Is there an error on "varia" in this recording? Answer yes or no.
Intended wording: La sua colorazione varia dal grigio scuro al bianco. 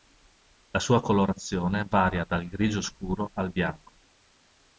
no